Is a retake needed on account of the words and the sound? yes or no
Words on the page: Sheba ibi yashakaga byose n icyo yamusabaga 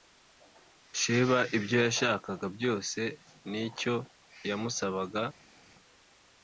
yes